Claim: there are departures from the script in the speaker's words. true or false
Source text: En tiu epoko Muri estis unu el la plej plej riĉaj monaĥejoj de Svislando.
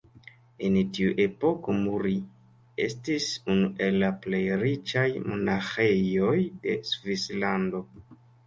true